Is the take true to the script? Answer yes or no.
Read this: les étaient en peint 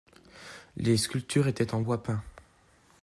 no